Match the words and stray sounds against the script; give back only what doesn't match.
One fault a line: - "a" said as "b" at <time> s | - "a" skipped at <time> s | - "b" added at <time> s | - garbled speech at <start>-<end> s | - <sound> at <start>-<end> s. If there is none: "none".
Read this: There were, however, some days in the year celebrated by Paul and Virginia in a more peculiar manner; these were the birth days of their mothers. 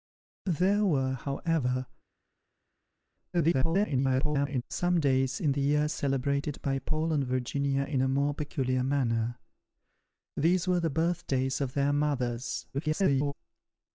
- garbled speech at 3.3-4.6 s
- garbled speech at 12.7-13.3 s